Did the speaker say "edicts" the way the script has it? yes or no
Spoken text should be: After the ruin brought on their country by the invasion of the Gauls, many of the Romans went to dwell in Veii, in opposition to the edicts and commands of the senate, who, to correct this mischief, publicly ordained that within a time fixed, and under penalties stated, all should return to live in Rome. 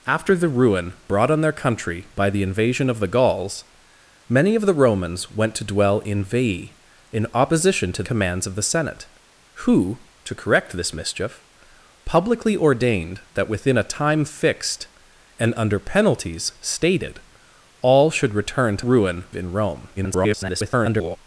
no